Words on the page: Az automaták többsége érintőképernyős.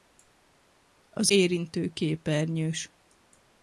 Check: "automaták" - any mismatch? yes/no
yes